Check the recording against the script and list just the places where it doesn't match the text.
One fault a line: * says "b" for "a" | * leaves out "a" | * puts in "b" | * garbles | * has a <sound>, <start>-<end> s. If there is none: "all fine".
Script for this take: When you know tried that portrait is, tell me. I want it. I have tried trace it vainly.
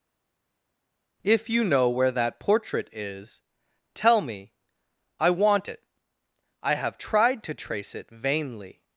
* says "If" for "When"
* says "where" for "tried"
* puts in "to"